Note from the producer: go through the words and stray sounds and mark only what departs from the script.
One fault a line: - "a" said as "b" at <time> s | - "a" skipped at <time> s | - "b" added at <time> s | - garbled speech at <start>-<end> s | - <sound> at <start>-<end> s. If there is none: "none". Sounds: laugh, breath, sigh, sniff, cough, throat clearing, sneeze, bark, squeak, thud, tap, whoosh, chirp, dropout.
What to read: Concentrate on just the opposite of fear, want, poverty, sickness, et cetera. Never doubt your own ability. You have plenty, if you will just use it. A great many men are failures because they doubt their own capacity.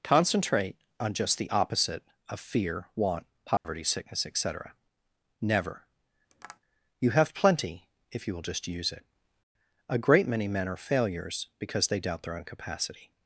- dropout at 3.6-3.6 s
- "doubt your own ability" skipped at 5.9 s
- tap at 6.3-6.6 s